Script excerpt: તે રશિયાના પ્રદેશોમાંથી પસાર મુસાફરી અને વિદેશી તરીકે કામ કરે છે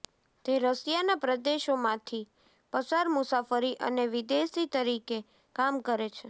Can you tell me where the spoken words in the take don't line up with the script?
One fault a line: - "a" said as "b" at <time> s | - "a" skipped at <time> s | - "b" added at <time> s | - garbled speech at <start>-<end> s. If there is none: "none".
none